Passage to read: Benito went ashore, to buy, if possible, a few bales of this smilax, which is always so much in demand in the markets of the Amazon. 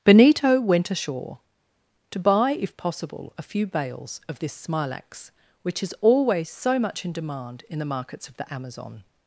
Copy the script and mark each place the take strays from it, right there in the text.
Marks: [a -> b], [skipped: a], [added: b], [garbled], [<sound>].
Benito went ashore, to buy, if possible, a few bales of this smilax, which is always so much in demand in the markets of the Amazon.